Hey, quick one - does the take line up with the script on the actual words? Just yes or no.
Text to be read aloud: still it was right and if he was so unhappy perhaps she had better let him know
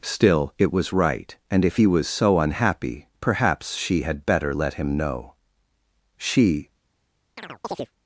no